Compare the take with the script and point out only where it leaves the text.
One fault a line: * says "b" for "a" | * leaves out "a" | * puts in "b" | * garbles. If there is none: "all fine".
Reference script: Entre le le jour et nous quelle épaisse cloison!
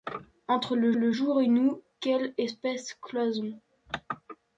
all fine